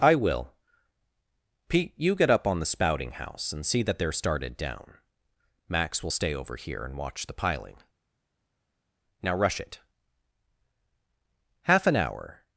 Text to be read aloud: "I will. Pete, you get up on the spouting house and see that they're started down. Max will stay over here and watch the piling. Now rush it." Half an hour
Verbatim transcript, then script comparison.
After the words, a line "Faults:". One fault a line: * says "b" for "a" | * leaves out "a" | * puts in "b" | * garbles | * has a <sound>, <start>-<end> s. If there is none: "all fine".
"I will. Pete, you get up on the spouting house and see that they're started down. Max will stay over here and watch the piling. Now rush it." Half an hour
Faults:
all fine